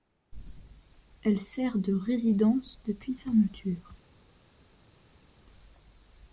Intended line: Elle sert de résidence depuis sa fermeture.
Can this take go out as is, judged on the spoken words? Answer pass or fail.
fail